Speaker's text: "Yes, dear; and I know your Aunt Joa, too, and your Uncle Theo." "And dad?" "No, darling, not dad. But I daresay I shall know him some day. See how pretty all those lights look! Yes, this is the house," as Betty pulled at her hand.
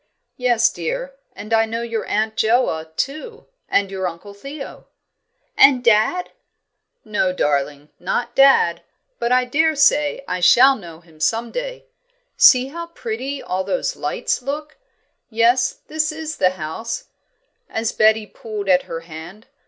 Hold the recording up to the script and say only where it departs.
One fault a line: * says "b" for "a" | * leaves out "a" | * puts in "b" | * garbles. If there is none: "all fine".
all fine